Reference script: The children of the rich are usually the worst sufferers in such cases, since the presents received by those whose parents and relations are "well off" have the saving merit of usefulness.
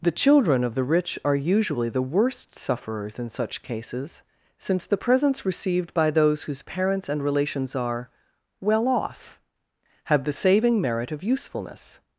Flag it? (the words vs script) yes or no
no